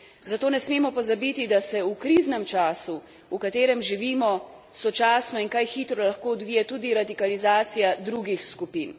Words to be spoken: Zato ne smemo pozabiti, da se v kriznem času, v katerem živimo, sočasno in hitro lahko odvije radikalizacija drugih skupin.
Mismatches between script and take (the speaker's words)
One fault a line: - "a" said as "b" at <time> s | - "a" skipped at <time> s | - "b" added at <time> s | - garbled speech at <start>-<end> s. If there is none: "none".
- "kaj" added at 5.5 s
- "tudi" added at 6.7 s